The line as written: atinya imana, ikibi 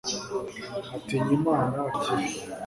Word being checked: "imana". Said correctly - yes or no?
yes